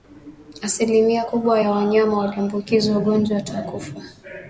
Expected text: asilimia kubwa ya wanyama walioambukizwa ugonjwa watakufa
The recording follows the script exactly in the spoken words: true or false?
true